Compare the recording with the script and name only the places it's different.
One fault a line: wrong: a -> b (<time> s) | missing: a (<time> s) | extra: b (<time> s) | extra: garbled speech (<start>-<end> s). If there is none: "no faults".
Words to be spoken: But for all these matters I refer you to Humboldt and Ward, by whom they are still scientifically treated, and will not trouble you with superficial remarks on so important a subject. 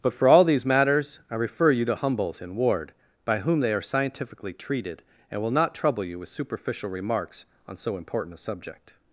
missing: still (3.8 s)